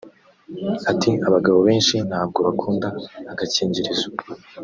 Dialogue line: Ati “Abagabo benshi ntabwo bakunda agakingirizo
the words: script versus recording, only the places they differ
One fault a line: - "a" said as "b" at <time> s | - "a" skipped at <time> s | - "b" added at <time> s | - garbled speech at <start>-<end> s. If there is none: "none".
none